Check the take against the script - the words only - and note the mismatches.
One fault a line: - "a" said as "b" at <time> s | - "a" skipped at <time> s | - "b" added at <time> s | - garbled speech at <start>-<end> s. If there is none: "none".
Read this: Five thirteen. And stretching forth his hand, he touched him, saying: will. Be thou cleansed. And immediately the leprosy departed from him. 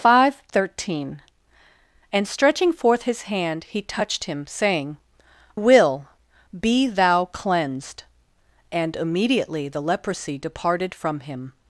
none